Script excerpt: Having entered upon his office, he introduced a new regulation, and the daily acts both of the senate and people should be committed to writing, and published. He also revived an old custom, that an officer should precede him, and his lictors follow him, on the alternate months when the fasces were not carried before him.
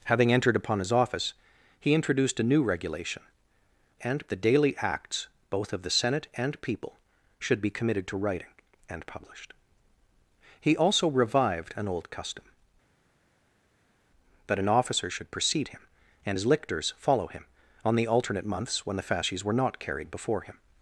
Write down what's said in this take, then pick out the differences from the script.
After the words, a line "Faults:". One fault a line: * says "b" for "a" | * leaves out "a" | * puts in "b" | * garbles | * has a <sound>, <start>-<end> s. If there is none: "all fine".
Having entered upon his office, he introduced a new regulation, and the daily acts both of the senate and people should be committed to writing, and published. He also revived an old custom, that an officer should precede him, and his lictors follow him, on the alternate months when the fasces were not carried before him.
Faults:
all fine